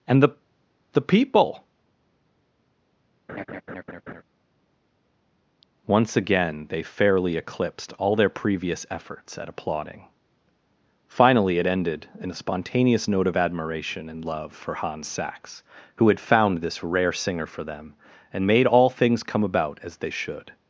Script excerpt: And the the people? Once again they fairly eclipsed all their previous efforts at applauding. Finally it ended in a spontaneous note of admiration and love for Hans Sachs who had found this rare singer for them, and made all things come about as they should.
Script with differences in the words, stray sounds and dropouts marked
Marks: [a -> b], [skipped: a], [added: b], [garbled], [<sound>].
And the the people? [laugh] Once again they fairly eclipsed all their previous efforts at applauding. Finally it ended in a spontaneous note of admiration and love for Hans Sachs who had found this rare singer for them, and made all things come about as they should.